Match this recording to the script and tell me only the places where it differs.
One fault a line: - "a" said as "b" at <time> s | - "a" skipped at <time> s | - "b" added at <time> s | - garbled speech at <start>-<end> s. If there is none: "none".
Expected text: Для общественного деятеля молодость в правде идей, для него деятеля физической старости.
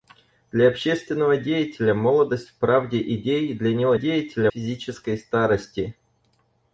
none